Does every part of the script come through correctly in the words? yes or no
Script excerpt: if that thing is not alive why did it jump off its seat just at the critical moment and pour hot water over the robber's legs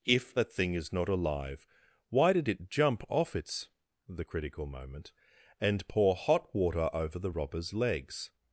no